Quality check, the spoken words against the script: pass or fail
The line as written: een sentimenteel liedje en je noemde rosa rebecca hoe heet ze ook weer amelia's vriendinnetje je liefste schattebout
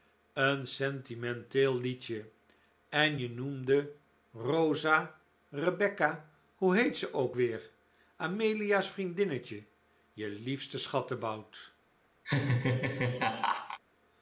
pass